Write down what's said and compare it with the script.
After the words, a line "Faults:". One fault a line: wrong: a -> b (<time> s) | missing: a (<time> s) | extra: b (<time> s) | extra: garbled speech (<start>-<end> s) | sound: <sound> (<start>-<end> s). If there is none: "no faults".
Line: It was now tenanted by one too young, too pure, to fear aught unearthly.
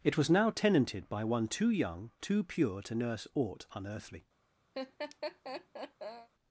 It was now tenanted by one too young, too pure, to nurse aught unearthly.
Faults:
wrong: fear -> nurse (3.0 s)
sound: laugh (4.7-6.3 s)